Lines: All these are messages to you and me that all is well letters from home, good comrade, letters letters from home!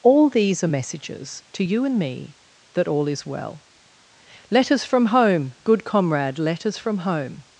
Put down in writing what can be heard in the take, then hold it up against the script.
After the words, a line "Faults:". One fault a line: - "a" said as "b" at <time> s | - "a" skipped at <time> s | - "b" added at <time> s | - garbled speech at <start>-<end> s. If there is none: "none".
All these are messages to you and me that all is well letters from home, good comrade, letters from home!
Faults:
- "letters" skipped at 6.8 s